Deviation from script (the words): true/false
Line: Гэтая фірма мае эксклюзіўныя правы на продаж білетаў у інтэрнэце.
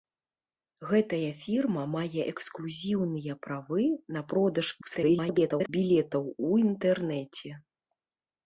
true